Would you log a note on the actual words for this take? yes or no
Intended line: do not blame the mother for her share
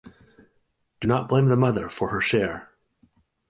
no